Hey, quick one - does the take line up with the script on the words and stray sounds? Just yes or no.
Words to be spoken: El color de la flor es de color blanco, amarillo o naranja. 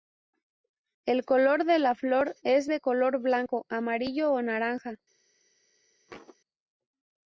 no